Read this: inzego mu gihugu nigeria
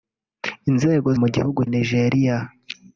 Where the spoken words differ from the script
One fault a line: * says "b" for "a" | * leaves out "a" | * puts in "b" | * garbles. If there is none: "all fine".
all fine